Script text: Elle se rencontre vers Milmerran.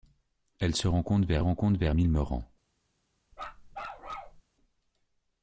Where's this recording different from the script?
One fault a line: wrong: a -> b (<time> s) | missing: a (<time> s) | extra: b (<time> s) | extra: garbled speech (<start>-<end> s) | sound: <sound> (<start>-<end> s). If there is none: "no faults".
extra: rencontre vers (1.4 s)
sound: bark (3.3-4.4 s)